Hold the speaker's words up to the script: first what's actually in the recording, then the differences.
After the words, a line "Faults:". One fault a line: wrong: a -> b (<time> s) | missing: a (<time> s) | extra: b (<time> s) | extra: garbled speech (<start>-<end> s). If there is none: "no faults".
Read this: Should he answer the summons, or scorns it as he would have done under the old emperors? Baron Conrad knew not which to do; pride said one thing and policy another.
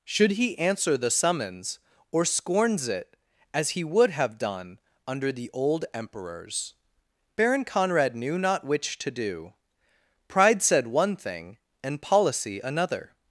Should he answer the summons, or scorns it as he would have done under the old emperors? Baron Conrad knew not which to do; pride said one thing and policy another.
Faults:
no faults